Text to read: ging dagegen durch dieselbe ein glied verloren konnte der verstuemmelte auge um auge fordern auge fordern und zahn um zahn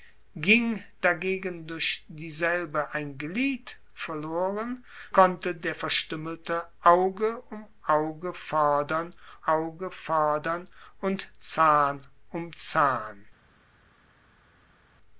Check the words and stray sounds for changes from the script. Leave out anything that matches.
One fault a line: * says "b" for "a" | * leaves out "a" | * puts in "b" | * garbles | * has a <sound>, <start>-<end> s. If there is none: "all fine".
all fine